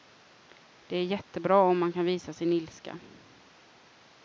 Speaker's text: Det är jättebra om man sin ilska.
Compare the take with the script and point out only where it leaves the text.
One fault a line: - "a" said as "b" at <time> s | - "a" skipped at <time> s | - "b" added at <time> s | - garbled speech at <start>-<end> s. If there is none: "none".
- "kan visa" added at 1.9 s